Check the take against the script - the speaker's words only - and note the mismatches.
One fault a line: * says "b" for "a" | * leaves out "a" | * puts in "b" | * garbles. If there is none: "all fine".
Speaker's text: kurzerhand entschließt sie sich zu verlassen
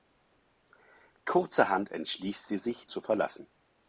all fine